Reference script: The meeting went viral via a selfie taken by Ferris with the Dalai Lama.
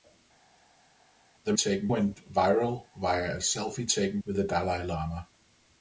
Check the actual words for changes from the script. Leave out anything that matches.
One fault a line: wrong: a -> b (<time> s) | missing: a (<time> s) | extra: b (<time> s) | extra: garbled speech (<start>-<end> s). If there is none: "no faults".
wrong: meeting -> taken (1.5 s)
missing: by Ferris (4.2 s)